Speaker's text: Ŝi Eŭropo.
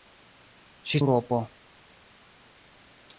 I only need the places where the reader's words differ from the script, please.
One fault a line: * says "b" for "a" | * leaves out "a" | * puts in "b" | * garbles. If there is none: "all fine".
all fine